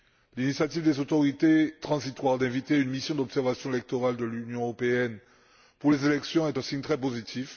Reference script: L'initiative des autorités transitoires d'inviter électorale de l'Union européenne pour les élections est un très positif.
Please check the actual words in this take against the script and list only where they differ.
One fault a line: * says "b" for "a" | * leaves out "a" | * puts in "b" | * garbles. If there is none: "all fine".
* puts in "une mission d'observation"
* puts in "signe"